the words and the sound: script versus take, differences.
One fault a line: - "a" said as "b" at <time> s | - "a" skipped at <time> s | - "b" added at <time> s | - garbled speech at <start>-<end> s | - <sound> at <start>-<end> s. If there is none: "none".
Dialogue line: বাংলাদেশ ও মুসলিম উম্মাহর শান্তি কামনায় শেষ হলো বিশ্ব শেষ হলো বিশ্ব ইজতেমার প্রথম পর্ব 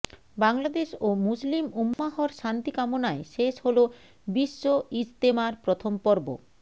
- dropout at 1.9-2.0 s
- "শেষ হলো বিশ্ব" skipped at 4.6 s